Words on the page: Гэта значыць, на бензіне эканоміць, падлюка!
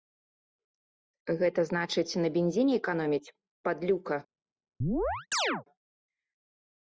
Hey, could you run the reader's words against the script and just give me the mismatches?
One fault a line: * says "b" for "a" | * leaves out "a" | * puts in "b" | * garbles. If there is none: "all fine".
all fine